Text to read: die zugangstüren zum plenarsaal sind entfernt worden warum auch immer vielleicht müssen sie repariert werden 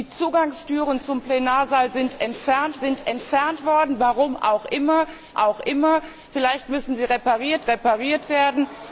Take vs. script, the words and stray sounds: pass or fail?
fail